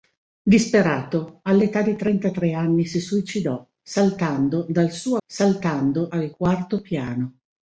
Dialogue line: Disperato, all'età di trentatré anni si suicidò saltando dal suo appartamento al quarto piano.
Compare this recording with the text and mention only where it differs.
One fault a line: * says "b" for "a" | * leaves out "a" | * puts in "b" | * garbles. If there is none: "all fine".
* says "saltando" for "appartamento"